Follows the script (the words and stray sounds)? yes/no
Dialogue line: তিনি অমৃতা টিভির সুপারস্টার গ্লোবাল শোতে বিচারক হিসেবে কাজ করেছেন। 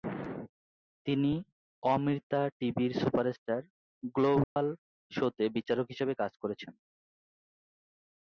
no